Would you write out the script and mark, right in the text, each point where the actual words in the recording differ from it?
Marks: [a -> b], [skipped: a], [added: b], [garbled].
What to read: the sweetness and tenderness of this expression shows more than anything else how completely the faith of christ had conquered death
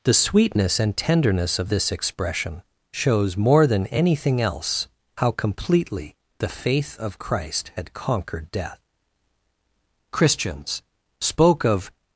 the sweetness and tenderness of this expression shows more than anything else how completely the faith of christ had conquered death [added: christians spoke of]